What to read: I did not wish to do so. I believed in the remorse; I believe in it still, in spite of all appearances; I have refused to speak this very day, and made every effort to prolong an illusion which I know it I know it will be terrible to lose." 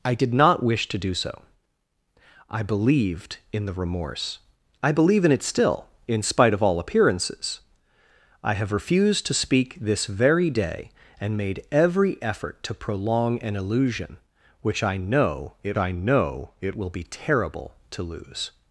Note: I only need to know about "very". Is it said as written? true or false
true